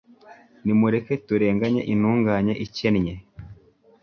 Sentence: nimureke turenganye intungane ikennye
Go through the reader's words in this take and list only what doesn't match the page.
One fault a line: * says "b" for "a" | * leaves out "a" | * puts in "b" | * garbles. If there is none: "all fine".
all fine